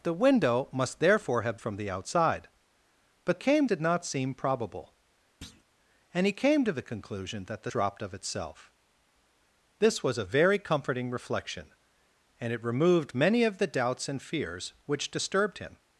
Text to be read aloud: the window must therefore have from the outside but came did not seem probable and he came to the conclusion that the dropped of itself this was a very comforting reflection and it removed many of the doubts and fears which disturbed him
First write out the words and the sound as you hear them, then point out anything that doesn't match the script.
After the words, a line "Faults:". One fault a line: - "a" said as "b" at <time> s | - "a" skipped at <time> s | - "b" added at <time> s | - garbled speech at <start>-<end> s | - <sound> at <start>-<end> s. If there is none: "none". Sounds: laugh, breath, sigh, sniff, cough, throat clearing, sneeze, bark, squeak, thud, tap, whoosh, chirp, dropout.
the window must therefore have from the outside but came did not seem probable and he came to the conclusion that the dropped of itself this was a very comforting reflection and it removed many of the doubts and fears which disturbed him
Faults:
- thud at 5.4-5.6 s